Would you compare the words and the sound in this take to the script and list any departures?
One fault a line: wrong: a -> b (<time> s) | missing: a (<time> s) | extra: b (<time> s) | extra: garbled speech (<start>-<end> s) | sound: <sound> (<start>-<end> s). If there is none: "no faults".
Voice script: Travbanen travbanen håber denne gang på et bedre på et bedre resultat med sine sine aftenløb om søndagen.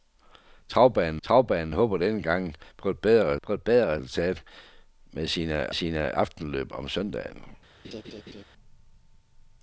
sound: laugh (7.8-8.4 s)